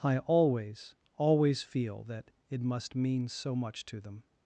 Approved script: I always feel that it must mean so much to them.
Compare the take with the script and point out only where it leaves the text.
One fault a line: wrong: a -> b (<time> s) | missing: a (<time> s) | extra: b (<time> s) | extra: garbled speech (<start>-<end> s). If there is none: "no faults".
extra: always (1.2 s)